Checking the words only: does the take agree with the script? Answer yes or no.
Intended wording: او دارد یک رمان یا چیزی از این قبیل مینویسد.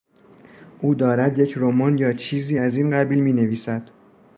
yes